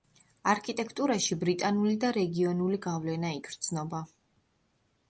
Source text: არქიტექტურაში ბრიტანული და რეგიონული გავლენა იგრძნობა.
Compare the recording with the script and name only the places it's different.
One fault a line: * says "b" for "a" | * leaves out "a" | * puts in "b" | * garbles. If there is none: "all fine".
all fine